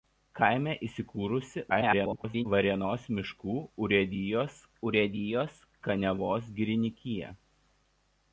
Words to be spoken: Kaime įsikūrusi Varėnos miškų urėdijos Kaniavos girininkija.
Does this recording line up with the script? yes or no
no